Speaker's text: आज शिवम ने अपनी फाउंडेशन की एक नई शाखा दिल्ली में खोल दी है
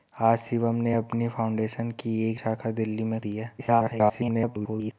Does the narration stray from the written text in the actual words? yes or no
yes